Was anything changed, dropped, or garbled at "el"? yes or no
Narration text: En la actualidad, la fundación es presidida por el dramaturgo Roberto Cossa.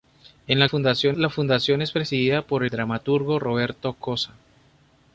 yes